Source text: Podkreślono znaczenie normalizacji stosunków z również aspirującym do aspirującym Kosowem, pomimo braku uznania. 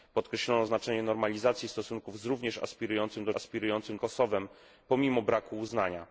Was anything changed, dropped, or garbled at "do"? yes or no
no